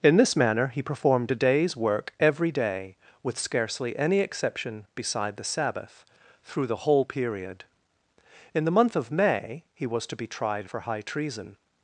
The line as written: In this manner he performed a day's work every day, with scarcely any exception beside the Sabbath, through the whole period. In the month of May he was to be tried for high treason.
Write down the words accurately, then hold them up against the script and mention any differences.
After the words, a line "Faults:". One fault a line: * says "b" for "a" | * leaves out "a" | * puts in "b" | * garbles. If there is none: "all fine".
In this manner he performed a day's work every day, with scarcely any exception beside the Sabbath, through the whole period. In the month of May he was to be tried for high treason.
Faults:
all fine